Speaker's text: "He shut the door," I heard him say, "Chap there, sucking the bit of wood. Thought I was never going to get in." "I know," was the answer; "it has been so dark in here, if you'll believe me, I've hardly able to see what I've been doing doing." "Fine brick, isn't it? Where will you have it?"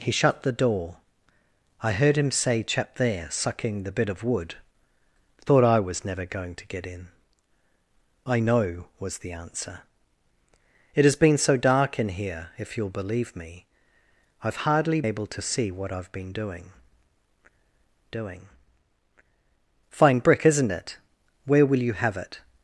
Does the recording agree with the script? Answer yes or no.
yes